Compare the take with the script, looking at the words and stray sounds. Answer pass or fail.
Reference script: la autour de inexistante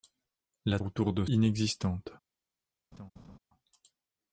fail